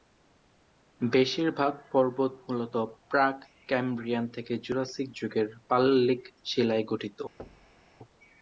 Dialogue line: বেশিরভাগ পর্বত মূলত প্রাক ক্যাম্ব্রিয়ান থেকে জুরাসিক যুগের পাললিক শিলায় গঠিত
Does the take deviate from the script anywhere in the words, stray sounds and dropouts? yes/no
yes